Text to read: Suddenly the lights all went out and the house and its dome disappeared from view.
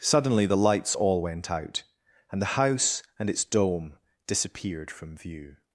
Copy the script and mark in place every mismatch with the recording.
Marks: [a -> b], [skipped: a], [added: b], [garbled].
Suddenly the lights all went out and the house and its dome disappeared from view.